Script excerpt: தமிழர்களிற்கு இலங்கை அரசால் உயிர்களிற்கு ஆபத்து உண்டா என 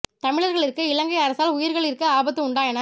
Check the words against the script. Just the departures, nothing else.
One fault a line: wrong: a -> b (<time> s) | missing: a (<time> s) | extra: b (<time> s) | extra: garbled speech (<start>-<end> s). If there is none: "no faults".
no faults